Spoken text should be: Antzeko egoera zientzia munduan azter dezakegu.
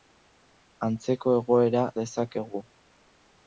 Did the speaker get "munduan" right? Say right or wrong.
wrong